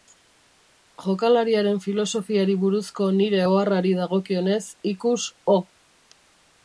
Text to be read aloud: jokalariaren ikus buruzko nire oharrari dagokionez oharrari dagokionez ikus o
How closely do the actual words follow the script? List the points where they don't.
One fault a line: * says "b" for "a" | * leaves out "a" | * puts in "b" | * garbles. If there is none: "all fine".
* says "filosofiari" for "ikus"
* leaves out "oharrari dagokionez"